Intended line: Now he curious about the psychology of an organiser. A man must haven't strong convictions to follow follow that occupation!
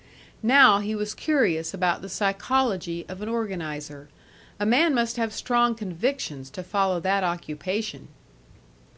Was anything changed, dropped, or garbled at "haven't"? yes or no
yes